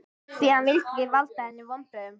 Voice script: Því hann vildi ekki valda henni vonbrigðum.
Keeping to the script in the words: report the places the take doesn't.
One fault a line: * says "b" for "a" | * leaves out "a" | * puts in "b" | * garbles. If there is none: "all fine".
all fine